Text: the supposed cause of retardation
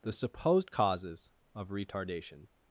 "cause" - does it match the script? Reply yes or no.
no